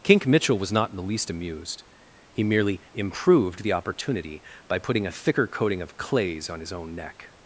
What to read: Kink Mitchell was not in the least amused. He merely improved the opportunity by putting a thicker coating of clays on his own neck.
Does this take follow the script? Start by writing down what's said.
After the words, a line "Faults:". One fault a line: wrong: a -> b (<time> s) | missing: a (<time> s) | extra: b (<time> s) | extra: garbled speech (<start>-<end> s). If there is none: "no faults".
Kink Mitchell was not in the least amused. He merely improved the opportunity by putting a thicker coating of clays on his own neck.
Faults:
no faults